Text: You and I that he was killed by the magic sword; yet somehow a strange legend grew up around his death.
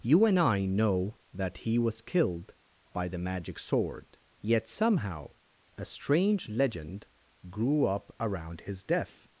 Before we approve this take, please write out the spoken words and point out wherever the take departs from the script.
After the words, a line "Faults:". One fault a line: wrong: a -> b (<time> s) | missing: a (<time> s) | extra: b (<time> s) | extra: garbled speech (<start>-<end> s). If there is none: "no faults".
You and I know that he was killed by the magic sword; yet somehow a strange legend grew up around his death.
Faults:
extra: know (0.7 s)